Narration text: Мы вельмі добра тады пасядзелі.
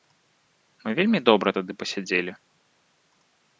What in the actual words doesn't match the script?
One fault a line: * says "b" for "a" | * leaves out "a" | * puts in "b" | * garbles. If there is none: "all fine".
all fine